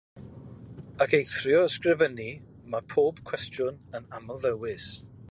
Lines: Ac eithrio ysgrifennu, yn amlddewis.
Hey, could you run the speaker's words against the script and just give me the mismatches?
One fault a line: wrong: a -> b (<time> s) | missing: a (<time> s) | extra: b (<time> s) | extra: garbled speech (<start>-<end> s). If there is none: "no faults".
extra: mae pob cwestiwn (2.8 s)